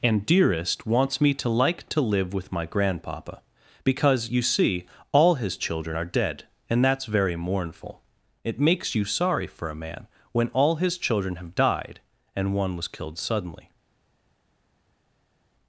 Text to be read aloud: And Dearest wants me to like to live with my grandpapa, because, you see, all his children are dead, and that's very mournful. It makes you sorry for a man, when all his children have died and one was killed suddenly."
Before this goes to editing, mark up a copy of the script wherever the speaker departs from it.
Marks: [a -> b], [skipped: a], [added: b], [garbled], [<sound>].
And Dearest wants me to like to live with my grandpapa, because, you see, all his children are dead, and that's very mournful. It makes you sorry for a man, when all his children have died and one was killed suddenly."